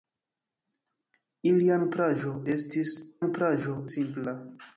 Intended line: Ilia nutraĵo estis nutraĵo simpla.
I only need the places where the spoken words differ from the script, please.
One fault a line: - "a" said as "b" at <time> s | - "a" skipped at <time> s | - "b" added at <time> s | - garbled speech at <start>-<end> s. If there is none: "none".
none